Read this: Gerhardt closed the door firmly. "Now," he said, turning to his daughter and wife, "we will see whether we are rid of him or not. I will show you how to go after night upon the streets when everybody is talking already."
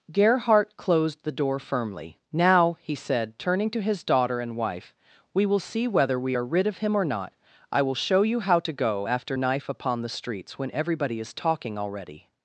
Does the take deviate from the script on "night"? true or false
true